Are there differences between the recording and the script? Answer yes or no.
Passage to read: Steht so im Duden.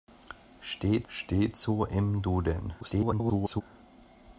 yes